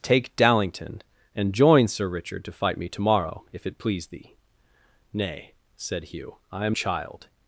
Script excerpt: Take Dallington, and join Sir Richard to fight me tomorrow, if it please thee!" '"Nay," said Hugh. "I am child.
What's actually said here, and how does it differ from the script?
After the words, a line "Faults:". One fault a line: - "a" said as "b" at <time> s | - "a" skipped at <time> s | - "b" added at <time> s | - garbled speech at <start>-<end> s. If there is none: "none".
Take Dallington, and join Sir Richard to fight me tomorrow, if it please thee!" '"Nay," said Hugh. "I am child.
Faults:
none